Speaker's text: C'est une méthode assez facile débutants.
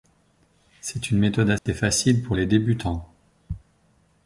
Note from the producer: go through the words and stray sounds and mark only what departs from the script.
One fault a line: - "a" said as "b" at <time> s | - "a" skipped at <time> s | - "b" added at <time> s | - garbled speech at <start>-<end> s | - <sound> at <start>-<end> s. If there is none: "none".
- dropout at 1.6-1.7 s
- "pour les" added at 2.2 s